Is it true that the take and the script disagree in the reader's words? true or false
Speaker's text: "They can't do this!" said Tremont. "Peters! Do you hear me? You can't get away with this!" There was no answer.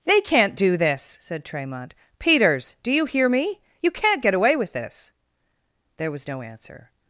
false